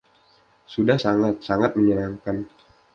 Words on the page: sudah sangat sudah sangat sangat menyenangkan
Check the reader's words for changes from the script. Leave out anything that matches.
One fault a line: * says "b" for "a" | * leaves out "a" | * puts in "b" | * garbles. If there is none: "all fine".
* leaves out "sudah sangat"